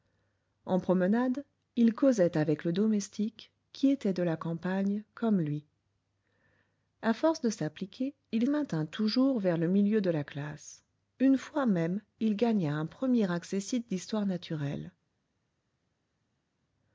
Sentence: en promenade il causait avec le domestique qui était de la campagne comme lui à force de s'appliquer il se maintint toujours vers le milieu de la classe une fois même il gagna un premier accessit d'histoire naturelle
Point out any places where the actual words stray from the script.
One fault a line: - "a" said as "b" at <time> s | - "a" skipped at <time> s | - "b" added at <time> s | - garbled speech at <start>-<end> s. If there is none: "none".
- "se" skipped at 8.5 s